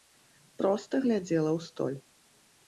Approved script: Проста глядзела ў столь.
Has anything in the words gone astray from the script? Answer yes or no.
no